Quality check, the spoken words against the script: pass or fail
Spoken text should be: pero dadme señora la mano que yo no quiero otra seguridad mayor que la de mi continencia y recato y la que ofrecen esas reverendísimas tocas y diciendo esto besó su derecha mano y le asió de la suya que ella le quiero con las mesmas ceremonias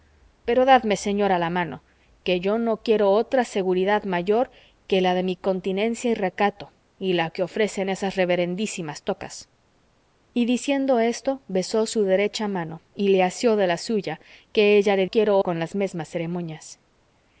pass